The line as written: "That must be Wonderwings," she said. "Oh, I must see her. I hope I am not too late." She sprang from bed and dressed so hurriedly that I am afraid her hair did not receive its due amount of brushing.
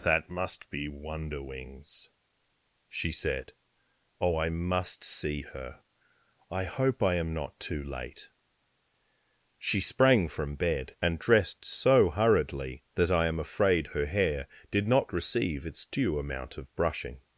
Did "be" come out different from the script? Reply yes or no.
no